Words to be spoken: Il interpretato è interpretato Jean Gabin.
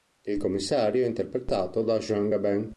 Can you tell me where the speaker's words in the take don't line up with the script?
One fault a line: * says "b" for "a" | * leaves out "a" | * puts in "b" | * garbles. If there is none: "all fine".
* says "commissario" for "interpretato"
* puts in "da"